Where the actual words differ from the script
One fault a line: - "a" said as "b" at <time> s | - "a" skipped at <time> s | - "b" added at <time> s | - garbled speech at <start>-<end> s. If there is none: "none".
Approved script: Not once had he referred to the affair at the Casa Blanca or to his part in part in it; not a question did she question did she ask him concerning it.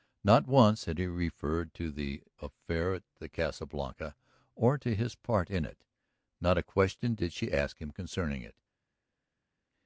- "part in" skipped at 5.7 s
- "question did she" skipped at 7.5 s